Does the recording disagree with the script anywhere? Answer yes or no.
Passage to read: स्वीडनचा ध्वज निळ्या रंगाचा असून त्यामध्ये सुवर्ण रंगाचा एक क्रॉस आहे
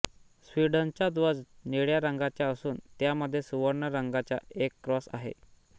no